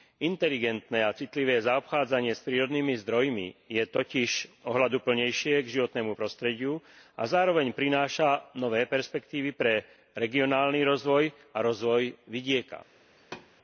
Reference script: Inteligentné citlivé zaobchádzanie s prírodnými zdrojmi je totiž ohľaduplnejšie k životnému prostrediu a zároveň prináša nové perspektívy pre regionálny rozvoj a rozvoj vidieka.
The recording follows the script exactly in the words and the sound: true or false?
false